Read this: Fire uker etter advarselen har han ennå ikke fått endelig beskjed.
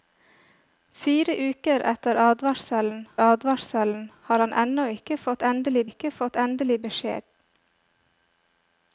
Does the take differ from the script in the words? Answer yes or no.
yes